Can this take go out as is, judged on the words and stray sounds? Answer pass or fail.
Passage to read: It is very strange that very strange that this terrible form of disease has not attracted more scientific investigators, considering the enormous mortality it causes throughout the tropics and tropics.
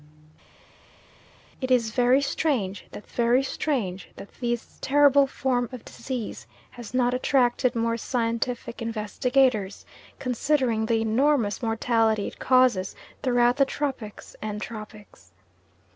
pass